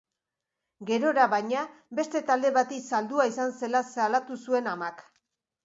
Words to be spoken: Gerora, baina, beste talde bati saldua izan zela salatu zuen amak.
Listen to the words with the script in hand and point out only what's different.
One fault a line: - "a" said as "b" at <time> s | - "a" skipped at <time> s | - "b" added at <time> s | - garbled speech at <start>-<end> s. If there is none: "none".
none